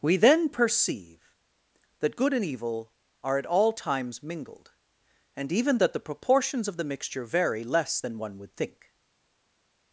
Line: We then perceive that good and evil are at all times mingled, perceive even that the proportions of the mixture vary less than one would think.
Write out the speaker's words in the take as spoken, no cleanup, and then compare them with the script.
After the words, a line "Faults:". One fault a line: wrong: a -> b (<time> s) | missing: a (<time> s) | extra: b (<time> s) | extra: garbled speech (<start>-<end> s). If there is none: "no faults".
We then perceive that good and evil are at all times mingled, and even that the proportions of the mixture vary less than one would think.
Faults:
wrong: perceive -> and (5.3 s)